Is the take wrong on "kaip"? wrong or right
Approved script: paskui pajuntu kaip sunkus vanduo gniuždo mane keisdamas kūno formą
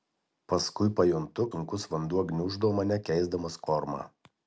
wrong